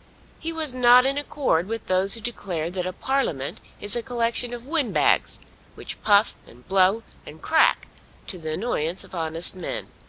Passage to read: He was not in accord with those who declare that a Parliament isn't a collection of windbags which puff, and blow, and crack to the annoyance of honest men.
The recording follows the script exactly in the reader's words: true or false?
false